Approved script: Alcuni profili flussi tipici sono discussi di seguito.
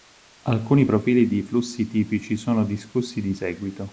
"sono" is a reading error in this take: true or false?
false